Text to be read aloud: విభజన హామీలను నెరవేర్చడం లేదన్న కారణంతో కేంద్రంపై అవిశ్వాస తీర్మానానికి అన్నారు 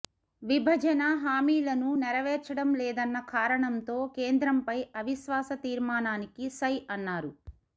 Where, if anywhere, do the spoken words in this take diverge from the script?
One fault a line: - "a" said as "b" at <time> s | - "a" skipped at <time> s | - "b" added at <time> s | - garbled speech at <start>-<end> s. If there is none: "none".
- "సై" added at 6.6 s